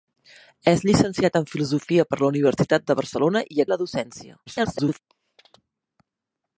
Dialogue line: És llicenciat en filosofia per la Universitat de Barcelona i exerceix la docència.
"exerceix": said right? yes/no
no